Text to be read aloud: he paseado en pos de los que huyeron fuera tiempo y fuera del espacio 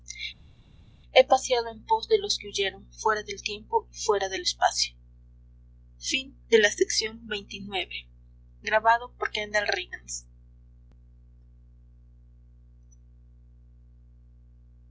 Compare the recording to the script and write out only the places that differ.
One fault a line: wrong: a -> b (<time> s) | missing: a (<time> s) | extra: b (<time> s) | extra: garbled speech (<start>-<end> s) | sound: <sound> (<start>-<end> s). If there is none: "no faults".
extra: del (3.2 s)